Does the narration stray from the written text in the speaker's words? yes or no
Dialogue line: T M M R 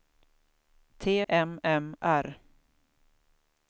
no